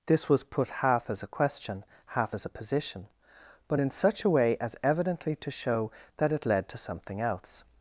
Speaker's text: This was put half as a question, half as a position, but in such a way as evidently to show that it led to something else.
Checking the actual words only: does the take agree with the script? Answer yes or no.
yes